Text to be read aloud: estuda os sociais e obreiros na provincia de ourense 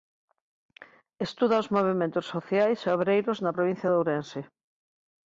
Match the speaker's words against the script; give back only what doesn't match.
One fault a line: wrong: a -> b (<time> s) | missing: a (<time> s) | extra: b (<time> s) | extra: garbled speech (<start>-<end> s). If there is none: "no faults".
extra: movementos (1.8 s)